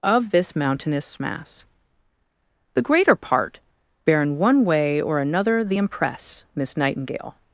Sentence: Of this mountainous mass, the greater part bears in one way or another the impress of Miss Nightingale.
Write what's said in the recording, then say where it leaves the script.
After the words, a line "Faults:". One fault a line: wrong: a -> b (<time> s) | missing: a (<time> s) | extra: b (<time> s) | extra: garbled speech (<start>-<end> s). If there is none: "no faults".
Of this mountainous mass, the greater part bear in one way or another the impress Miss Nightingale.
Faults:
wrong: bears -> bear (4.0 s)
missing: of (6.4 s)